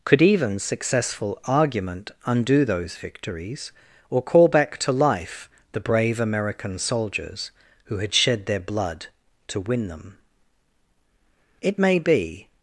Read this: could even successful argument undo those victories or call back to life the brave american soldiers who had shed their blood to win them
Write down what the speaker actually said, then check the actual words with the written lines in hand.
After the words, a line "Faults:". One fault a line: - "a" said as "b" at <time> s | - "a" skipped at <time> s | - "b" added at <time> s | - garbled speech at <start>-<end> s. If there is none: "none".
could even successful argument undo those victories or call back to life the brave american soldiers who had shed their blood to win them it may be
Faults:
- "it may be" added at 11.6 s